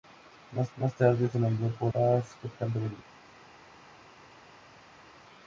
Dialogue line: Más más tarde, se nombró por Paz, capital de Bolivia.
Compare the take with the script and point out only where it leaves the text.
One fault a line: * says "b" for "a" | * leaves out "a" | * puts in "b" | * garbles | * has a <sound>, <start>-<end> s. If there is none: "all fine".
all fine